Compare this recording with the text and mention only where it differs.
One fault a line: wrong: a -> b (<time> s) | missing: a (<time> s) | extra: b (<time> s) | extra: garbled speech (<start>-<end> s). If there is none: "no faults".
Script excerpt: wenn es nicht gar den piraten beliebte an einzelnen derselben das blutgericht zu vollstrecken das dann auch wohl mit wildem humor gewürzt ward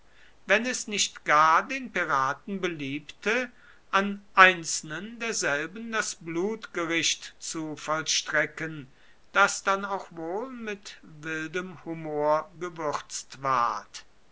no faults